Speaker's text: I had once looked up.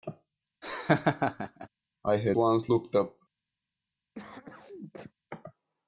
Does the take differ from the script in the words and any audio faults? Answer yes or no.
yes